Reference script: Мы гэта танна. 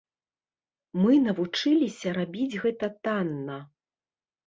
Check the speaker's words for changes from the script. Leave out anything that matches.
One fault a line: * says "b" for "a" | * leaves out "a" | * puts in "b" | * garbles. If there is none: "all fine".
* puts in "навучыліся рабіць"